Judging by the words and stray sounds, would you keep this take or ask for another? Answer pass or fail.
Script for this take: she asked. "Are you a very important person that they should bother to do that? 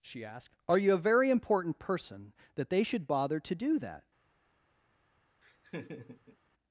fail